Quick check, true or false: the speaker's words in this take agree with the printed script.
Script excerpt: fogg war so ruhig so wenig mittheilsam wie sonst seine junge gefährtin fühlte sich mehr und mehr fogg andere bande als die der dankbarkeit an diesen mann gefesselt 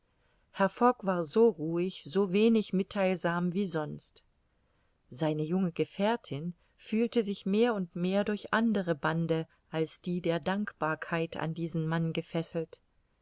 false